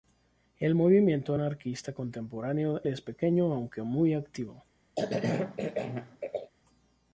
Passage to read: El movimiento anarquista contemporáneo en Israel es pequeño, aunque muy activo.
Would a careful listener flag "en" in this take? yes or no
yes